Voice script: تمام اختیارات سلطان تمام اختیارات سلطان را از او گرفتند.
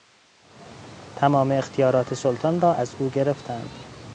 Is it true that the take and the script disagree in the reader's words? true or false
true